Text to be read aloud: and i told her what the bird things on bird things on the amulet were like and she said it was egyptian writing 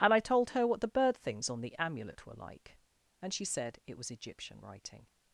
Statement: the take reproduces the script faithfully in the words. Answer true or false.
false